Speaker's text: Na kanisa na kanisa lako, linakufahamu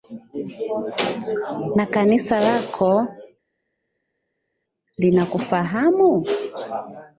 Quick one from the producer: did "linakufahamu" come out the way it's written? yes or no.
yes